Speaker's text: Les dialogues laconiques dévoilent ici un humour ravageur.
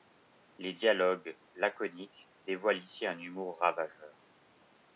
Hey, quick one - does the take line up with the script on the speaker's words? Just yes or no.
yes